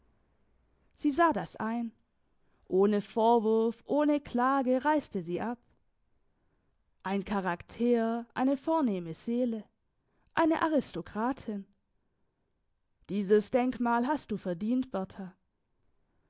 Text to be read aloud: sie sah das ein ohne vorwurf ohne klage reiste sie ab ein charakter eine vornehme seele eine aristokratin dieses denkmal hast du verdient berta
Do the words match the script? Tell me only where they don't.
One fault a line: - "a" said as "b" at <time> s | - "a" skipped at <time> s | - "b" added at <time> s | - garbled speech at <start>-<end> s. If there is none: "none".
none